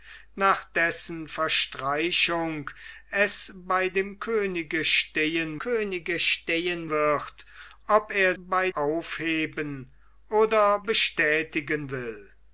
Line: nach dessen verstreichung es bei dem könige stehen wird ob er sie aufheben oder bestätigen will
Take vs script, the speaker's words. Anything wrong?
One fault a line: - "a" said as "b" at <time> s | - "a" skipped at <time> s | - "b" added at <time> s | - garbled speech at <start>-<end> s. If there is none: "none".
- "könige stehen" added at 5.6 s
- "sie" said as "bei" at 8.4 s